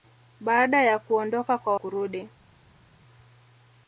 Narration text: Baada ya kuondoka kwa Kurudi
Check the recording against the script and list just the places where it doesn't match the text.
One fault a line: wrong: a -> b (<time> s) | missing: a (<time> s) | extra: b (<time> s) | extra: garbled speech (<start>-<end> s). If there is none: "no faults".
no faults